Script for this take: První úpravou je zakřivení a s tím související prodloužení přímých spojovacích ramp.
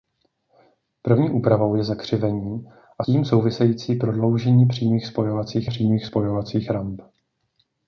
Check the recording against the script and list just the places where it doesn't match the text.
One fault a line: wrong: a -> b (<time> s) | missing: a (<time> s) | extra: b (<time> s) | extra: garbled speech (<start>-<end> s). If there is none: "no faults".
missing: s (3.0 s)
extra: přímých spojovacích (5.6 s)